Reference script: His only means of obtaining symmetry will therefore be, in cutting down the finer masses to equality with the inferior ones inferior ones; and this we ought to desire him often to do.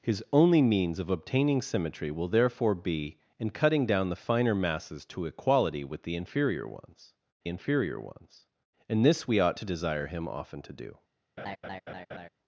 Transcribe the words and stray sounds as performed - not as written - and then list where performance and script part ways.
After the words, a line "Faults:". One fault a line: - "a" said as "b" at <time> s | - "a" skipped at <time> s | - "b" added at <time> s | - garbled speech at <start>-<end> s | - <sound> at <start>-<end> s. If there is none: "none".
His only means of obtaining symmetry will therefore be, in cutting down the finer masses to equality with the inferior ones inferior ones; and this we ought to desire him often to do.
Faults:
- laugh at 11.4-12.3 s